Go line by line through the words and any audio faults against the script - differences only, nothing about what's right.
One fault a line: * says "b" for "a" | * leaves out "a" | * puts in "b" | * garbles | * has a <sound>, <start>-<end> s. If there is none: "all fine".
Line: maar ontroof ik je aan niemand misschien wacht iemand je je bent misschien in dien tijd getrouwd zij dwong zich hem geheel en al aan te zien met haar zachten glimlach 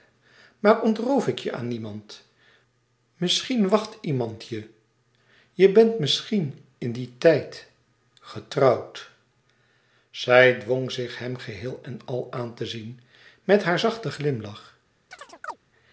* has a chirp, 15.1-15.6 s